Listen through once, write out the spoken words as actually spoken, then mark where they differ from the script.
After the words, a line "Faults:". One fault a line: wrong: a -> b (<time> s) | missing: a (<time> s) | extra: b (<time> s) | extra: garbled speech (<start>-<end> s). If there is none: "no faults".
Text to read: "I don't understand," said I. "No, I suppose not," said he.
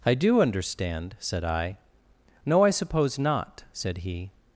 "I do understand," said I. "No, I suppose not," said he.
Faults:
wrong: don't -> do (0.1 s)